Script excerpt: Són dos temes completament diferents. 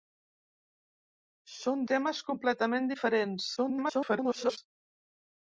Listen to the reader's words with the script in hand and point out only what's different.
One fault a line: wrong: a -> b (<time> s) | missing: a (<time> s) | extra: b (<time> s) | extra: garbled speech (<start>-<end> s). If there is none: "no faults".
missing: dos (1.9 s)
extra: garbled speech (3.6-4.6 s)